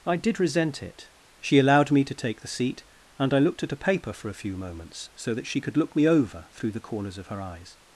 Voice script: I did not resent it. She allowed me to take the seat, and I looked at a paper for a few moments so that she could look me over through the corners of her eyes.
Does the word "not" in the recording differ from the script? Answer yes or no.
yes